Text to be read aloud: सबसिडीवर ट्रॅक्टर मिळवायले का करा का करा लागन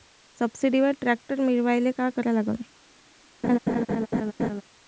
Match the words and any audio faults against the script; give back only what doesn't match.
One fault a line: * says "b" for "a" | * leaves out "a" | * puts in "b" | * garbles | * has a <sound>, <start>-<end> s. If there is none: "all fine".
* leaves out "का करा"
* has a laugh, 3.4-4.6 s